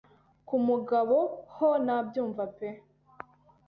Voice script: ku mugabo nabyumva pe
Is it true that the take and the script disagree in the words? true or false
true